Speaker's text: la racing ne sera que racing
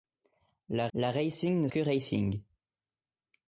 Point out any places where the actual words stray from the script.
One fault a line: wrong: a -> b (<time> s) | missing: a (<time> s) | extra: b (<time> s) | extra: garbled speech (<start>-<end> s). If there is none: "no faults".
extra: la (0.9 s)
missing: sera (1.7 s)